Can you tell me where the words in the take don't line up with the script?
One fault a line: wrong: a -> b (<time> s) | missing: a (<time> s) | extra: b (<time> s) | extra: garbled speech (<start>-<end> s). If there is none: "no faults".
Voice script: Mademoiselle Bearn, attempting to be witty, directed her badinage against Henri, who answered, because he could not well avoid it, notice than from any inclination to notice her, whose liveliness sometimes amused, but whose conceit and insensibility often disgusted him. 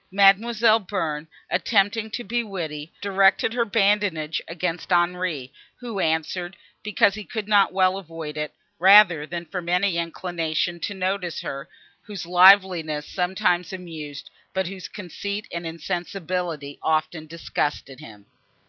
wrong: notice -> rather (8.8 s)